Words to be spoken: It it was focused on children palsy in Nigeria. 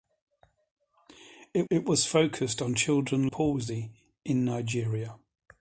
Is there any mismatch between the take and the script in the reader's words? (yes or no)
no